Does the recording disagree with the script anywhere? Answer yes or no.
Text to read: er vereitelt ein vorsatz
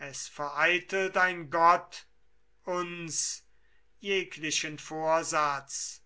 yes